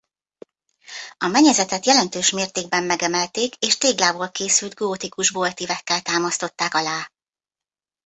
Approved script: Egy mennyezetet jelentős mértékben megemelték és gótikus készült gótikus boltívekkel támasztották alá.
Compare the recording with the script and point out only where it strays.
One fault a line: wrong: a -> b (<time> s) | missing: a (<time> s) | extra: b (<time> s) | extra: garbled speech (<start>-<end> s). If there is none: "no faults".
wrong: Egy -> A (1.2 s)
wrong: gótikus -> téglából (3.8 s)